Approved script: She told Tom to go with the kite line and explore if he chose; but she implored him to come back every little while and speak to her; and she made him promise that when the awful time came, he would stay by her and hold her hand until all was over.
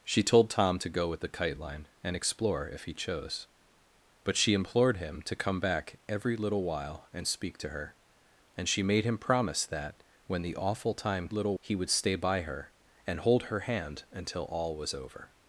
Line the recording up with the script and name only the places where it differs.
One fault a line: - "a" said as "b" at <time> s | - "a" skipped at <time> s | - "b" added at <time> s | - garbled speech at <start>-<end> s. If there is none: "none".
- "came" said as "little" at 11.3 s